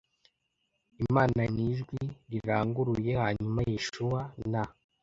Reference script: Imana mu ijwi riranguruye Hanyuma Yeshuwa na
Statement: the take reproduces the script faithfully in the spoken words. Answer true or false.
true